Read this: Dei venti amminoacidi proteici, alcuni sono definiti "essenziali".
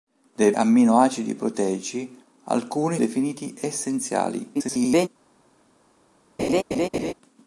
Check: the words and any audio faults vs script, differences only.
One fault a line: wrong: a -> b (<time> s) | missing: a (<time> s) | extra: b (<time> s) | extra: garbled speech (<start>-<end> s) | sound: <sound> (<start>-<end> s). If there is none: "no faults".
missing: venti (0.5 s)
missing: sono (3.0 s)
extra: garbled speech (4.5-5.1 s)
sound: laugh (6.4-7.1 s)